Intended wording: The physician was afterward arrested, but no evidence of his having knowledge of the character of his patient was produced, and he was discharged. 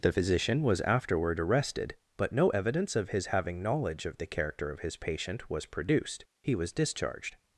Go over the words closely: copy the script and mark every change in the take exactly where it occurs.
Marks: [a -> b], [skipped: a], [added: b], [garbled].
The physician was afterward arrested, but no evidence of his having knowledge of the character of his patient was produced, [skipped: and] he was discharged.